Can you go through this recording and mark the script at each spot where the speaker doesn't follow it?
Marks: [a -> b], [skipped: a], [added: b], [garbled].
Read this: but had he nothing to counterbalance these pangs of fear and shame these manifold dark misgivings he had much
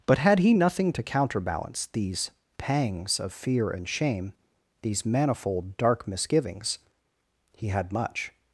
but had he nothing to counterbalance these pangs of fear and shame these manifold dark misgivings he had much